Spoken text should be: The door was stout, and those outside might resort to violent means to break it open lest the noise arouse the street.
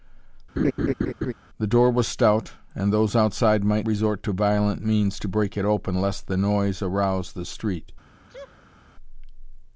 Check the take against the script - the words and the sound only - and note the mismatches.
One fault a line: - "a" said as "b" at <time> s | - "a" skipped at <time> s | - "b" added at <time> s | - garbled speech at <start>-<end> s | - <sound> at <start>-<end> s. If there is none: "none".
- laugh at 0.6-1.3 s
- sneeze at 8.3-8.8 s